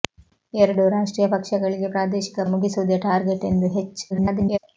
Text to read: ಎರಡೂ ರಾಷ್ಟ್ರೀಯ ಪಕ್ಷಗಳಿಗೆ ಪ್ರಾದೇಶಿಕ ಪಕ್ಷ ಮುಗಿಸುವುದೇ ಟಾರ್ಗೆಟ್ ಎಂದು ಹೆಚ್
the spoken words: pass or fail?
fail